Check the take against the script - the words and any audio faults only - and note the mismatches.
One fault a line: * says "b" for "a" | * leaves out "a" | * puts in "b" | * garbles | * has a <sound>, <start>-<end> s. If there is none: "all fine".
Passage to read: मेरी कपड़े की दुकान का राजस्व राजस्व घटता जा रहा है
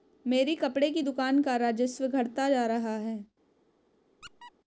* leaves out "राजस्व"
* has a squeak, 4.2-4.5 s